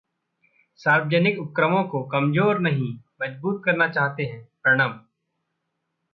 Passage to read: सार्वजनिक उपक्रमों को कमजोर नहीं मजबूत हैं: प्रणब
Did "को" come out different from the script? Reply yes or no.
no